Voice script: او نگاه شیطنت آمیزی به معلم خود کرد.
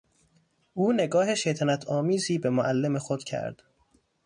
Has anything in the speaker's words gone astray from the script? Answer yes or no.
no